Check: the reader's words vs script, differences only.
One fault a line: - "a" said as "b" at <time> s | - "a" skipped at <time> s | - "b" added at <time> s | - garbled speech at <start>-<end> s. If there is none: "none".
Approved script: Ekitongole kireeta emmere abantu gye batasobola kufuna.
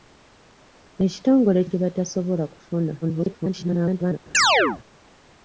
- "kireeta emmere abantu" skipped at 1.6 s
- garbled speech at 3.0-4.2 s